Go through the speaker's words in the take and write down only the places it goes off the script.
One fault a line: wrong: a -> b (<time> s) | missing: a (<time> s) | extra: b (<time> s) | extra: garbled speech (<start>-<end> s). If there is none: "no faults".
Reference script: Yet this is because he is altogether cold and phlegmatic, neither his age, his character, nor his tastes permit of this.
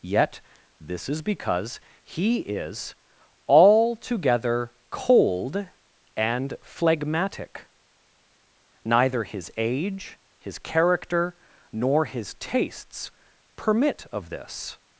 no faults